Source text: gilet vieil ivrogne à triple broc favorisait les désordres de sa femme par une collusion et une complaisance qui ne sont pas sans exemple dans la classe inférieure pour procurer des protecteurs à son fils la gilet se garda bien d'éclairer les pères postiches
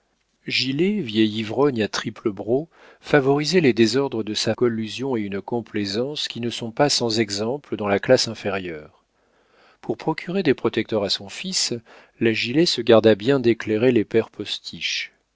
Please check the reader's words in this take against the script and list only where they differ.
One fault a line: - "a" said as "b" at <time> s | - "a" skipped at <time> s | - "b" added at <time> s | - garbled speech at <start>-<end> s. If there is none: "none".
- "femme par une" skipped at 4.5 s